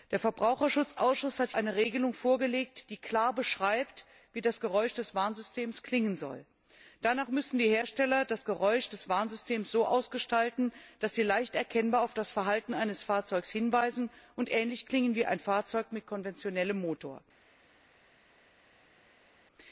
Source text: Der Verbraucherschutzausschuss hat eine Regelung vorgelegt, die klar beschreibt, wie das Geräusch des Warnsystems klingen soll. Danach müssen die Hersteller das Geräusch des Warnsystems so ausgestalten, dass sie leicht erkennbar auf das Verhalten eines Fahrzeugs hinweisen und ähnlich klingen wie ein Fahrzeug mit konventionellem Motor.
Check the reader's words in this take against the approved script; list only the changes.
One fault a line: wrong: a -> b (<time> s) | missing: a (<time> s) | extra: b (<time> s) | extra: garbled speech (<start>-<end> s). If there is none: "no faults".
no faults